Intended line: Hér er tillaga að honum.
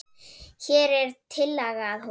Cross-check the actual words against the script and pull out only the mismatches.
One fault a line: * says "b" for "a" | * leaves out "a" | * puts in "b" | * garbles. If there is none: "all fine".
all fine